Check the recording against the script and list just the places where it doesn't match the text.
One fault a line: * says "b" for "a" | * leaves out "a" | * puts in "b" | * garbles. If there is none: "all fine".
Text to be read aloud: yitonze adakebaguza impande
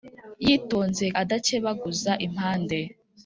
all fine